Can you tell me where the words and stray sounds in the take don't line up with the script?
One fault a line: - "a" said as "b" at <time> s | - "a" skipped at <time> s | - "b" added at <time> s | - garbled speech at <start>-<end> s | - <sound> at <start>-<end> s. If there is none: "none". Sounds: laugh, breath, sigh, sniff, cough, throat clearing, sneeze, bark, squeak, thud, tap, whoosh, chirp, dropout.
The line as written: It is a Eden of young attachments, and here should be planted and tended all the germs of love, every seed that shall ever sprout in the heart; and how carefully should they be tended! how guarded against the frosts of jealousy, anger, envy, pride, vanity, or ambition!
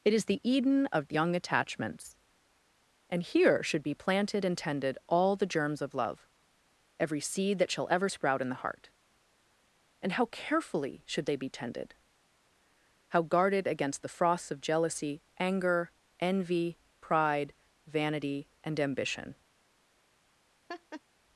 - "a" said as "the" at 0.2 s
- "or" said as "and" at 18.6 s
- laugh at 20.7-21.0 s